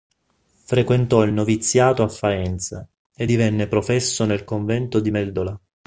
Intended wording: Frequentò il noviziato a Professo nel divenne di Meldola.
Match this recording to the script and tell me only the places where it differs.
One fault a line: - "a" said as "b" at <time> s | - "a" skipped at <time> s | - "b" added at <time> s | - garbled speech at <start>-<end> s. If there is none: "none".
- "Faenza e divenne" added at 2.1 s
- "divenne" said as "convento" at 4.4 s